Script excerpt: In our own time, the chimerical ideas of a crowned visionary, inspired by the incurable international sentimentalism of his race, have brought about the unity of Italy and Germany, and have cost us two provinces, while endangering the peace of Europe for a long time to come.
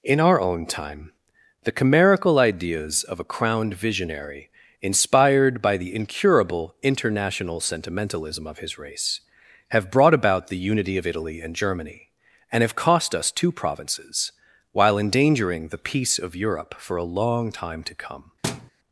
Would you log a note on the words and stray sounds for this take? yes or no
yes